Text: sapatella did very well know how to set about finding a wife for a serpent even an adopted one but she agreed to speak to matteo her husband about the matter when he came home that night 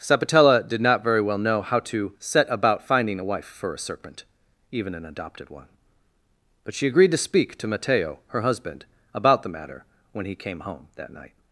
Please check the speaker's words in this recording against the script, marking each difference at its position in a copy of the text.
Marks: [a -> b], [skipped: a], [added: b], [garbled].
sapatella did [added: not] very well know how to set about finding a wife for a serpent even an adopted one but she agreed to speak to matteo her husband about the matter when he came home that night